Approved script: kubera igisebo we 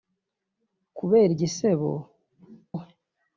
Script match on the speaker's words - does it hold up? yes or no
yes